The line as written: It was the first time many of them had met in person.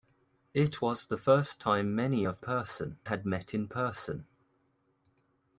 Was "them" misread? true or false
true